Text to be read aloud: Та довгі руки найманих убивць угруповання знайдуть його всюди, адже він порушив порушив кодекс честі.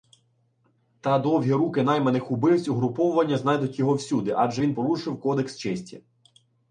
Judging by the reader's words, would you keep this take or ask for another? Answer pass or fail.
fail